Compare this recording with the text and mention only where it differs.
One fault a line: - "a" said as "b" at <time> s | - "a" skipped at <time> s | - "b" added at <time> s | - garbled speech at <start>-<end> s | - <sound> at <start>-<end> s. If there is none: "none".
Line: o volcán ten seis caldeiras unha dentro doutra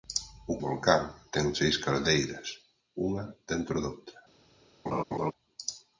- laugh at 4.9-5.3 s